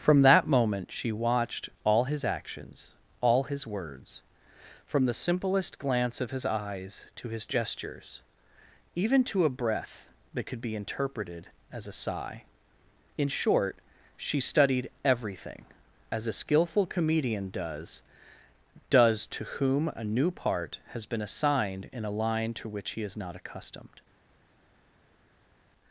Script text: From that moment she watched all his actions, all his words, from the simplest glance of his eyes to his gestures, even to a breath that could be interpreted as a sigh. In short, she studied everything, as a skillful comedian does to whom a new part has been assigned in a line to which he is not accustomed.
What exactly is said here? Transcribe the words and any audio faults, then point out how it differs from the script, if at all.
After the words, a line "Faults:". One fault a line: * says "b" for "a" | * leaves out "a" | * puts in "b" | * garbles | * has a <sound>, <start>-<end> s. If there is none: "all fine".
From that moment she watched all his actions, all his words, from the simplest glance of his eyes to his gestures, even to a breath that could be interpreted as a sigh. In short, she studied everything, as a skillful comedian does does to whom a new part has been assigned in a line to which he is not accustomed.
Faults:
* puts in "does"